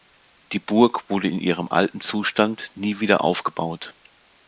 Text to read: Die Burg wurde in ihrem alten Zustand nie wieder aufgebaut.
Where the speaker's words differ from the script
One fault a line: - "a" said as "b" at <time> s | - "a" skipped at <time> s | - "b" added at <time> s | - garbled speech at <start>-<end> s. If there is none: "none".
none